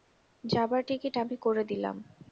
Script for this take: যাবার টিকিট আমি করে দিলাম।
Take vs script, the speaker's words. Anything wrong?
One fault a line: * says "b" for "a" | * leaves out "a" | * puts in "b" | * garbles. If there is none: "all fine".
all fine